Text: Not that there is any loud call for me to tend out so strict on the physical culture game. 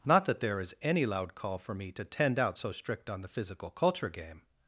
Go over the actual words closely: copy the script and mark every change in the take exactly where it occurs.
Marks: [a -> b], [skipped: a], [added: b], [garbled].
Not that there is any loud call for me to tend out so strict on the physical culture game.